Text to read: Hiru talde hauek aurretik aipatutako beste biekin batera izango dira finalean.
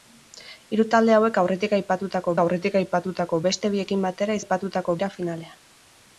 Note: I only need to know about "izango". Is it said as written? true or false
false